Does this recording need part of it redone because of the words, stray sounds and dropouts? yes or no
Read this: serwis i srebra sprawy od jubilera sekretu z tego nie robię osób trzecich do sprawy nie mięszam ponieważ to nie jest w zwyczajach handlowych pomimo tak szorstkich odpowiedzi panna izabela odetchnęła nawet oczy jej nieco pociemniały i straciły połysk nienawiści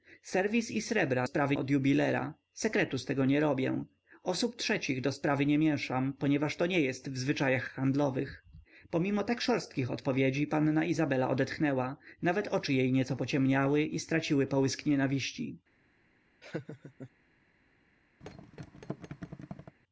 yes